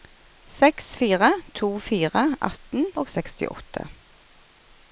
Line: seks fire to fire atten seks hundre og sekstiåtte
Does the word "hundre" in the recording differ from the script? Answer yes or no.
yes